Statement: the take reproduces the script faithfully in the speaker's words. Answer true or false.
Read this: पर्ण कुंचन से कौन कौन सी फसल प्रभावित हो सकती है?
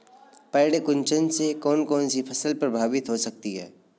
true